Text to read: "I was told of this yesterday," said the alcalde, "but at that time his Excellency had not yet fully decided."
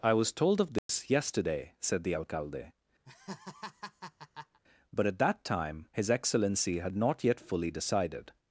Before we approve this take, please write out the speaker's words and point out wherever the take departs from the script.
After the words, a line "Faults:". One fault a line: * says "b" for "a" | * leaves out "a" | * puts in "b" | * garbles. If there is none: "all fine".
"I was told of this yesterday," said the alcalde, "but at that time his Excellency had not yet fully decided."
Faults:
all fine